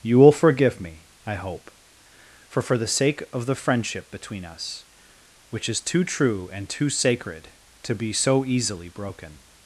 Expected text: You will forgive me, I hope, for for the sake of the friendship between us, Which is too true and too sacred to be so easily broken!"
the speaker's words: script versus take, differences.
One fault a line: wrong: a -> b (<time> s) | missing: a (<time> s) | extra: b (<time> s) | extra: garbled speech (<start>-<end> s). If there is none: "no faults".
no faults